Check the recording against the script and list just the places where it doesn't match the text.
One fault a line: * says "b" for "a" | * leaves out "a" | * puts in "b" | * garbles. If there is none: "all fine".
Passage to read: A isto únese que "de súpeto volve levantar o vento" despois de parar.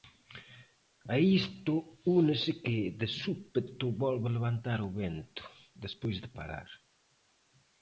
all fine